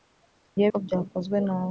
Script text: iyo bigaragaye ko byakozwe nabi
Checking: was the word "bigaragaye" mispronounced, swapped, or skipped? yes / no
yes